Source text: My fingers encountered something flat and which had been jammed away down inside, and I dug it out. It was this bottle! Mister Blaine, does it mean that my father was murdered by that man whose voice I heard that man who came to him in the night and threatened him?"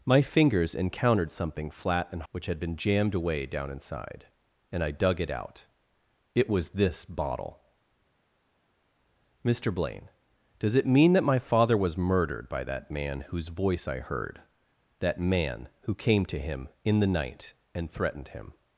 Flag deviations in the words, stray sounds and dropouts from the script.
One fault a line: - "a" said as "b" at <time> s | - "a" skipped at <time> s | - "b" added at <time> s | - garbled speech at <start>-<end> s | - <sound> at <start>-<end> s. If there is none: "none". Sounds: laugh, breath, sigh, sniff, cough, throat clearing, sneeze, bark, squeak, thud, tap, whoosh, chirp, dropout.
none